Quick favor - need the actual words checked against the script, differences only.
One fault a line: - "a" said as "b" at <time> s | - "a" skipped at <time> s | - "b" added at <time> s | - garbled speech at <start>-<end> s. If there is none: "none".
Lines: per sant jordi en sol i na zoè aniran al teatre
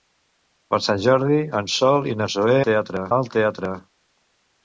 - "aniran" said as "teatre" at 2.7 s